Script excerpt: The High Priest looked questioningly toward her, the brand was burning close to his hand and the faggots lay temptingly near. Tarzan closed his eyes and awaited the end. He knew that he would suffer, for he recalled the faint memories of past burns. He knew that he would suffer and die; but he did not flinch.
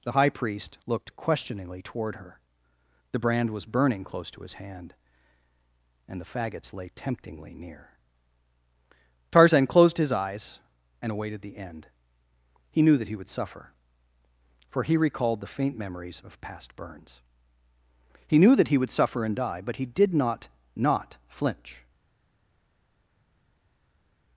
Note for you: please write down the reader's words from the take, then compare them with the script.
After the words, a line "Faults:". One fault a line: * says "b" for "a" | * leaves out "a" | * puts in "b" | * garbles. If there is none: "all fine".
The High Priest looked questioningly toward her, the brand was burning close to his hand and the faggots lay temptingly near. Tarzan closed his eyes and awaited the end. He knew that he would suffer, for he recalled the faint memories of past burns. He knew that he would suffer and die; but he did not not flinch.
Faults:
* puts in "not"